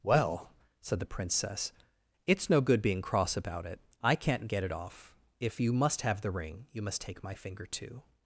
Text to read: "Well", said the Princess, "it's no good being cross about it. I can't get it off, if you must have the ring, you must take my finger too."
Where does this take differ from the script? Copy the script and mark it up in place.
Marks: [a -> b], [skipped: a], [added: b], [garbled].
"Well", said the Princess, "it's no good being cross about it. I can't get it off, if you must have the ring, you must take my finger too."